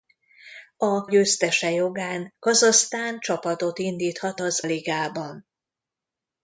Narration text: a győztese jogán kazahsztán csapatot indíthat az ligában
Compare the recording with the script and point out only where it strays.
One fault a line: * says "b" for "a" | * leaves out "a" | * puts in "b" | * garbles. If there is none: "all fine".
all fine